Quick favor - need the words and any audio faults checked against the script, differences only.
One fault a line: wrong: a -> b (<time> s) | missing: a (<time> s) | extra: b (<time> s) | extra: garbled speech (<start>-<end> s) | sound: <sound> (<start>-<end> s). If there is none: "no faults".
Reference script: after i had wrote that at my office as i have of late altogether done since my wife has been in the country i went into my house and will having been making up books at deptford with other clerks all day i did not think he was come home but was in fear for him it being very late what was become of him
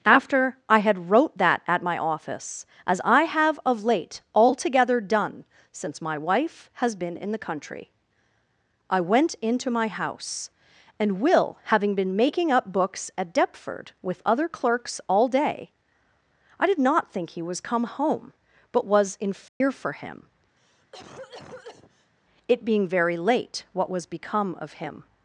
sound: dropout (19.5-19.6 s)
sound: cough (20.6-22.1 s)